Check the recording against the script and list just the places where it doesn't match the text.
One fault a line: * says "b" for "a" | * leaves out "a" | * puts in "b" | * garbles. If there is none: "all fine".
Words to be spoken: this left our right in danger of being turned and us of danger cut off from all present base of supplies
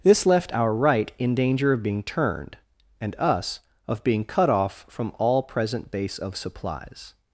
* says "being" for "danger"